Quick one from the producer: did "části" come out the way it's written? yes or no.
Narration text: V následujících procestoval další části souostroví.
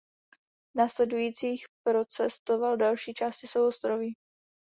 yes